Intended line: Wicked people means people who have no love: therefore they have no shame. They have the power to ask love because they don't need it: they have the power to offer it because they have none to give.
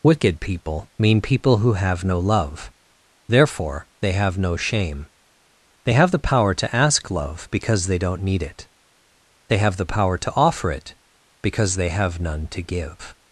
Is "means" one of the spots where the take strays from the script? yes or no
yes